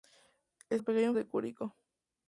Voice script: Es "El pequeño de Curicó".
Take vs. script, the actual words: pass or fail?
pass